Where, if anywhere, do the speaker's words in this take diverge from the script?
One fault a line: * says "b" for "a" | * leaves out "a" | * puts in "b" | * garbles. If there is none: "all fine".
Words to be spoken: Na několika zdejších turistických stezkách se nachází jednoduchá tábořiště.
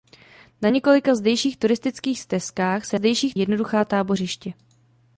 * says "zdejších" for "nachází"